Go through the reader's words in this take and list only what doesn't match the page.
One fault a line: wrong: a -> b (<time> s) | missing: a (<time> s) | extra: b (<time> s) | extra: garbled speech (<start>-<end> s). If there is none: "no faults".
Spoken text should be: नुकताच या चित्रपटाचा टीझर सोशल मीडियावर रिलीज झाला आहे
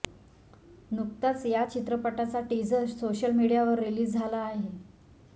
no faults